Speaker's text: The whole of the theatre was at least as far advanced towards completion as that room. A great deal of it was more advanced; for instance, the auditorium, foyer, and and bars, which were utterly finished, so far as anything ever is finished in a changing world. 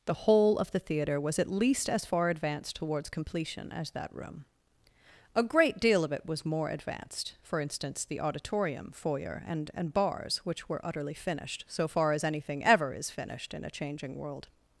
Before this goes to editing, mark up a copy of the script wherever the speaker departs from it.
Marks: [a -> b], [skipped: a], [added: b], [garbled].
The whole of the theatre was at least as far advanced towards completion as that room. A great deal of it was more advanced; for instance, the auditorium, foyer, and and bars, which were utterly finished, so far as anything ever is finished in a changing world.